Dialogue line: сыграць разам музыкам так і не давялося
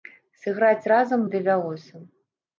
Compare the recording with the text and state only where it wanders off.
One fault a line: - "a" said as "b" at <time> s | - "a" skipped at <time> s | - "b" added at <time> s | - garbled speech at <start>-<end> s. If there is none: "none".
- "музыкам так і" skipped at 1.3 s